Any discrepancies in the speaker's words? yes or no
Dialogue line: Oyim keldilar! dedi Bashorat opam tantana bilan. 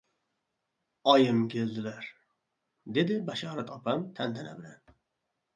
no